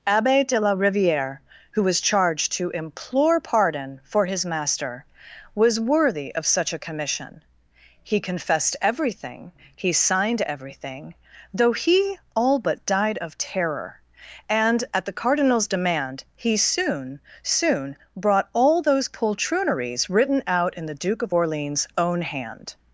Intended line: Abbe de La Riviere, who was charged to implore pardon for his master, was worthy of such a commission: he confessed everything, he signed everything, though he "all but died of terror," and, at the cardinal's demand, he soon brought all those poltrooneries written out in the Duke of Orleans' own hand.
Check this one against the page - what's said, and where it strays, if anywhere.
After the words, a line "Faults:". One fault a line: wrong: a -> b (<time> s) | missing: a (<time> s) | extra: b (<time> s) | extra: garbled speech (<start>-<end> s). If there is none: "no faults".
Abbe de La Riviere, who was charged to implore pardon for his master, was worthy of such a commission: he confessed everything, he signed everything, though he "all but died of terror," and, at the cardinal's demand, he soon soon brought all those poltrooneries written out in the Duke of Orleans' own hand.
Faults:
extra: soon (17.4 s)